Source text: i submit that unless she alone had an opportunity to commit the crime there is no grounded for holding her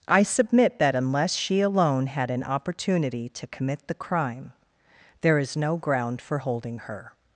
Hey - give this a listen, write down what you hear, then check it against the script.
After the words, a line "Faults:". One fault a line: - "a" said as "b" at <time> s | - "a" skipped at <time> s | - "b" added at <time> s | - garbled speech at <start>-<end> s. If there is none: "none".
i submit that unless she alone had an opportunity to commit the crime there is no ground for holding her
Faults:
- "grounded" said as "ground" at 5.8 s